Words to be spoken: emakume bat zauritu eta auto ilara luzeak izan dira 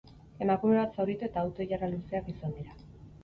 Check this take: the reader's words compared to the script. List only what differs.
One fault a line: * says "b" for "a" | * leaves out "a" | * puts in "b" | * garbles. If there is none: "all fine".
all fine